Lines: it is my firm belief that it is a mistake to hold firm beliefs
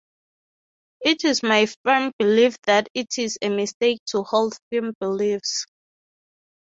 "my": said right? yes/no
yes